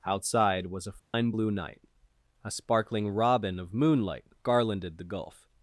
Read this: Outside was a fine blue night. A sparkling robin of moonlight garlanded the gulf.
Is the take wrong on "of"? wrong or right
right